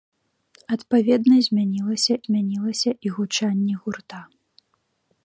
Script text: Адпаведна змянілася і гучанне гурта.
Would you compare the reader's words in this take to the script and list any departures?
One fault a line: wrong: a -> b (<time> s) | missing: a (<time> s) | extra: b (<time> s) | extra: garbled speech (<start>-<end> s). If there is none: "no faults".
extra: змянілася (2.3 s)